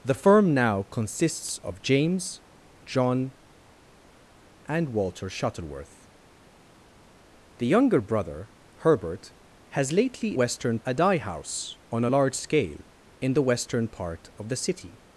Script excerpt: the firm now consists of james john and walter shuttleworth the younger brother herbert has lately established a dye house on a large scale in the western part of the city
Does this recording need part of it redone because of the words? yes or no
yes